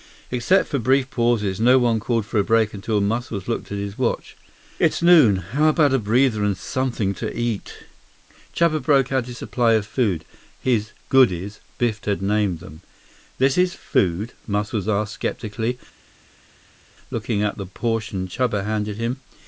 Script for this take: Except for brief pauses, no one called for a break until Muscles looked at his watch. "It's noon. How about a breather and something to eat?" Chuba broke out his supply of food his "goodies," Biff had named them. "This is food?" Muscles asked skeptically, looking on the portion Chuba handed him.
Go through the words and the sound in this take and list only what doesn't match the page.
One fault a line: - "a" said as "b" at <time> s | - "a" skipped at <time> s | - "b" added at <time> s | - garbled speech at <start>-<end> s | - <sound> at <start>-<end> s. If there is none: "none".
- "on" said as "at" at 17.4 s